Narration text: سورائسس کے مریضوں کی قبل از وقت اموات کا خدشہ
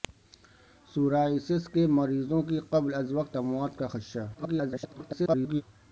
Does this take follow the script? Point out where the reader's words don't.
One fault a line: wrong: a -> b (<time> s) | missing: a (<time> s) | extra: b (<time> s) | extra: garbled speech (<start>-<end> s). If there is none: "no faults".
extra: garbled speech (4.3-5.6 s)